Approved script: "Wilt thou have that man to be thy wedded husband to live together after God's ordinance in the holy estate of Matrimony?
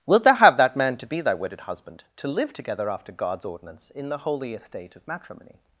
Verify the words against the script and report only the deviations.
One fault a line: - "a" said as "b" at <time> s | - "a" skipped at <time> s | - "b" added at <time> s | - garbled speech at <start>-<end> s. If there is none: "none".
none